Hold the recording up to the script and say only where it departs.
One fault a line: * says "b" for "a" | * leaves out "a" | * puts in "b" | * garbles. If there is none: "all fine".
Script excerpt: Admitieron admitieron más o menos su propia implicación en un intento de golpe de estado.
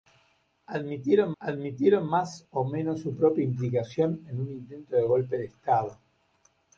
all fine